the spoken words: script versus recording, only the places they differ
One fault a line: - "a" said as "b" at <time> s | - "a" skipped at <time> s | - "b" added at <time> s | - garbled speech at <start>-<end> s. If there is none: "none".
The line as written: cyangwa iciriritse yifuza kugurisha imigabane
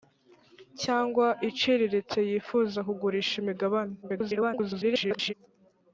- garbled speech at 4.0-5.3 s